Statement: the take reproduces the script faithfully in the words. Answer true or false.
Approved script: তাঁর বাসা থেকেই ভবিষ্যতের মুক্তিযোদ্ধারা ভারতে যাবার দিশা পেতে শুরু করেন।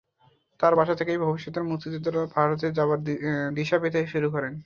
true